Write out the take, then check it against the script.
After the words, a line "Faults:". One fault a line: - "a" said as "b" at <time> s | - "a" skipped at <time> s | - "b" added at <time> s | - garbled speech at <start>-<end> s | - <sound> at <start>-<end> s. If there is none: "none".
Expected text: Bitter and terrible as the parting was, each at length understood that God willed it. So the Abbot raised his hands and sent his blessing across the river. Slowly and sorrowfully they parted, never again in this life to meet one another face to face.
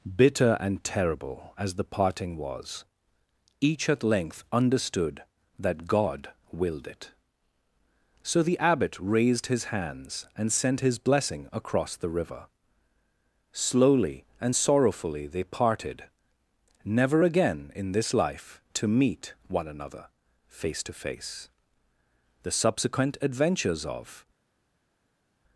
Bitter and terrible as the parting was, each at length understood that God willed it. So the Abbot raised his hands and sent his blessing across the river. Slowly and sorrowfully they parted, never again in this life to meet one another face to face. The subsequent adventures of
Faults:
- "The subsequent adventures of" added at 22.4 s